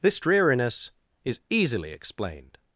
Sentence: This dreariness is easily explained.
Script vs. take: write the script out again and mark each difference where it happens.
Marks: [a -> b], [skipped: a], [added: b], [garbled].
This dreariness is easily explained.